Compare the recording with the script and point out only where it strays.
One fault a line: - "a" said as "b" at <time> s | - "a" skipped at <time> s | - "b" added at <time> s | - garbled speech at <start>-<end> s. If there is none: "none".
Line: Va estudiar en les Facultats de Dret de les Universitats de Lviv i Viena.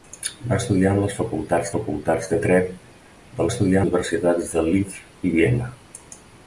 - "Facultats" added at 1.7 s
- "les" said as "estudiar" at 3.5 s